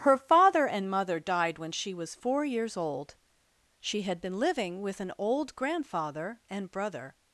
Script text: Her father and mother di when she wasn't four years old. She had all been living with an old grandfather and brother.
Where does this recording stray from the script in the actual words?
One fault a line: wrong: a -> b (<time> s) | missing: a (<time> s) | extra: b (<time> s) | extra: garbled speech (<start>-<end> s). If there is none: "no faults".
wrong: di -> died (1.2 s)
wrong: wasn't -> was (1.9 s)
missing: all (4.2 s)